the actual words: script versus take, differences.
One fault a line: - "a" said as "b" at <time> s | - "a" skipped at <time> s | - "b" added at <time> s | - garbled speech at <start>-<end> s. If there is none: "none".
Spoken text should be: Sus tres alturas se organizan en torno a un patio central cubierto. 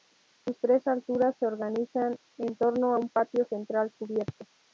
none